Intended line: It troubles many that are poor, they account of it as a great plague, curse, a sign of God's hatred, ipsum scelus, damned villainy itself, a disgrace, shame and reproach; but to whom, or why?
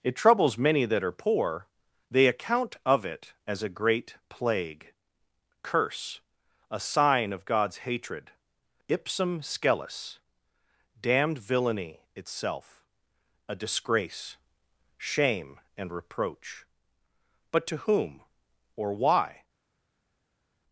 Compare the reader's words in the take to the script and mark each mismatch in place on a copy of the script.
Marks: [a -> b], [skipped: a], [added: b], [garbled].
It troubles many that are poor, they account of it as a great plague, curse, a sign of God's hatred, ipsum scelus, damned villainy itself, a disgrace, shame and reproach; but to whom, or why?